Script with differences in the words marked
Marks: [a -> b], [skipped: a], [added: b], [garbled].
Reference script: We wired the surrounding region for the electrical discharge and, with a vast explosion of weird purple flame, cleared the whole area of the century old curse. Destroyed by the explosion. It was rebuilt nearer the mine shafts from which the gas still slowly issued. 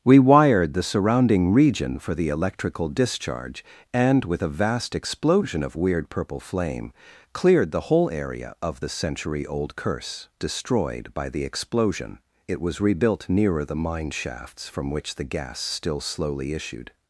We wired the surrounding region for the electrical discharge and, with a vast explosion of weird purple flame, cleared the whole area of the century old curse. Destroyed by the explosion. It was rebuilt nearer the mine shafts from which the gas still slowly issued.